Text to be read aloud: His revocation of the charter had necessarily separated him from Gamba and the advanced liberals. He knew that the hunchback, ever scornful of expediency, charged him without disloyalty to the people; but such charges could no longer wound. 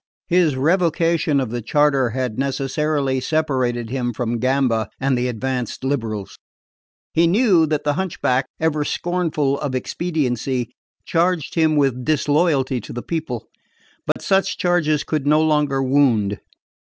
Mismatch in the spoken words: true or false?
true